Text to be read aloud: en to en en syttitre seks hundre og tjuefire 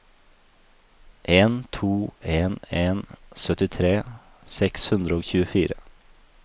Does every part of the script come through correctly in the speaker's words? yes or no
yes